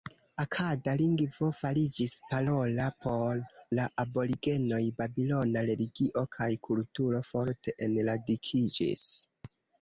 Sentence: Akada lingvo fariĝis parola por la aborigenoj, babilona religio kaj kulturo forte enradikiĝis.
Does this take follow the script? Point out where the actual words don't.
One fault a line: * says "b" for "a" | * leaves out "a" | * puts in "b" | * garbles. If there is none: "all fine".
all fine